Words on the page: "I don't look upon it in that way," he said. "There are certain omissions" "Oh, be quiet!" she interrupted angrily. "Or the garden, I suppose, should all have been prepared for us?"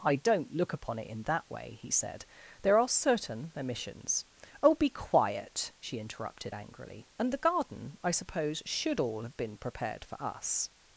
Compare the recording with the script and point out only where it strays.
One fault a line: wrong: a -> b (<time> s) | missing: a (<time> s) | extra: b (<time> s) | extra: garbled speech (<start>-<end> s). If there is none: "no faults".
wrong: Or -> And (7.2 s)